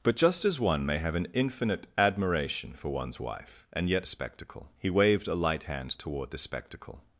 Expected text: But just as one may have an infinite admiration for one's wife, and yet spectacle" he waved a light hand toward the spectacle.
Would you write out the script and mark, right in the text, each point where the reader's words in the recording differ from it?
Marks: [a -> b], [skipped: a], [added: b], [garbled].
But just as one may have an infinite admiration for one's wife, and yet spectacle" he waved a light hand toward the spectacle.